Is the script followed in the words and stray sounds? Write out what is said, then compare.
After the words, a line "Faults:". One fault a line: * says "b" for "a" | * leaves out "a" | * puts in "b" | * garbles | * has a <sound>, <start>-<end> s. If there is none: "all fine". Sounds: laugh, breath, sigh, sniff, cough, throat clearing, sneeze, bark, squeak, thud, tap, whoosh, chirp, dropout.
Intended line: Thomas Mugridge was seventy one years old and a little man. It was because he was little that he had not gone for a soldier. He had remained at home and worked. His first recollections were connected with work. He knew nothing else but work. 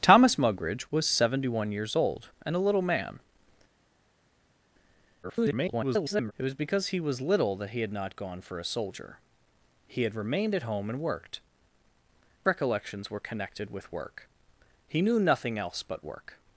Thomas Mugridge was seventy one years old and a little man. [garbled] It was because he was little that he had not gone for a soldier. He had remained at home and worked. Recollections were connected with work. He knew nothing else but work.
Faults:
* garbles
* leaves out "His first"